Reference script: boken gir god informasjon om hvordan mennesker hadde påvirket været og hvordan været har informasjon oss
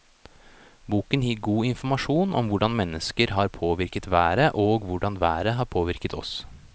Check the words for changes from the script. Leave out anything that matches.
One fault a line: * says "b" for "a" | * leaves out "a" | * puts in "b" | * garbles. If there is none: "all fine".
* says "har" for "hadde"
* says "påvirket" for "informasjon"